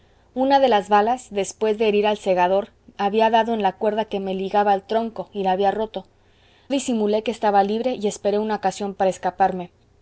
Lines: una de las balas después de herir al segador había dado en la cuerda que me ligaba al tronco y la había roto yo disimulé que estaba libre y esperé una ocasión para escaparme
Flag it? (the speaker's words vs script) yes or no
yes